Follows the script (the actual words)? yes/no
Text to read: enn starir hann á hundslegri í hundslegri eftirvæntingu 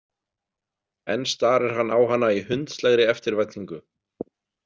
no